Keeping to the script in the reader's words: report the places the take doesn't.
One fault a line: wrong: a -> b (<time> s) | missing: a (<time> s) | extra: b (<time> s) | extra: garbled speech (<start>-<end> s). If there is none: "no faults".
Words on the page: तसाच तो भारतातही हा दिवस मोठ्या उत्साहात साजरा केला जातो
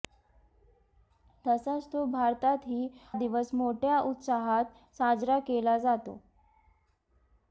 missing: हा (2.9 s)